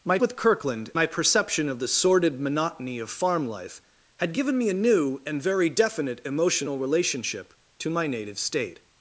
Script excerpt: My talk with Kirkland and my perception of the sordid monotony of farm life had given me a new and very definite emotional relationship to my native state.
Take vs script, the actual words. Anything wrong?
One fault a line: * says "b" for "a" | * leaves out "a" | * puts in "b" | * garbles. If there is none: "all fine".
* leaves out "talk"
* leaves out "and"